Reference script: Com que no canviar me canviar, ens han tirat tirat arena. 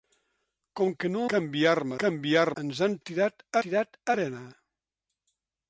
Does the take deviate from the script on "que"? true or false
false